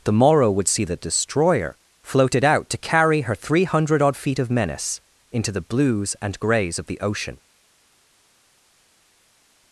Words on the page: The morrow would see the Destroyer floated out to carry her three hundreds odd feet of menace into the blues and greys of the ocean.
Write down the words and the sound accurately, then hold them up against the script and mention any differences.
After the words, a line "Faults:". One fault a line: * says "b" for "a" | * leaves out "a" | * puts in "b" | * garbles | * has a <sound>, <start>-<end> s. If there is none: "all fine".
The morrow would see the Destroyer floated out to carry her three hundred odd feet of menace into the blues and greys of the ocean.
Faults:
* says "hundred" for "hundreds"